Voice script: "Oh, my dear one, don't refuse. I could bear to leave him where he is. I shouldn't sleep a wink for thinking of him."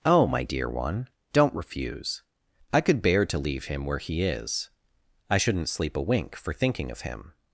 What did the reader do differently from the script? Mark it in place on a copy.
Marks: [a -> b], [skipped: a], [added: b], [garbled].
"Oh, my dear one, don't refuse. I could bear to leave him where he is. I shouldn't sleep a wink for thinking of him."